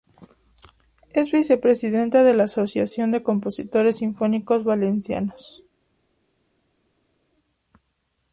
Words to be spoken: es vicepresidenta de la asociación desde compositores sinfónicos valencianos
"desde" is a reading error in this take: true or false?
true